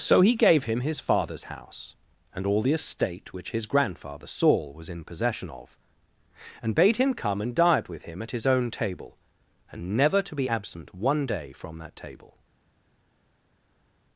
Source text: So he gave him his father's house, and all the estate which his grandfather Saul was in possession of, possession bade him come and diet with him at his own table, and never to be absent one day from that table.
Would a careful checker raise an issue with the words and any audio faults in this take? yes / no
yes